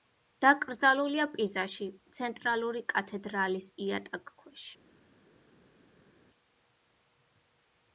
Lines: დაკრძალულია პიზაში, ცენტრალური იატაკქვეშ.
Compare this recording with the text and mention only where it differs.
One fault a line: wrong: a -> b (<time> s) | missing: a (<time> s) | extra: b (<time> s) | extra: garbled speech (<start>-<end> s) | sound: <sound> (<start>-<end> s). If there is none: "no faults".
extra: კათედრალის (3.0 s)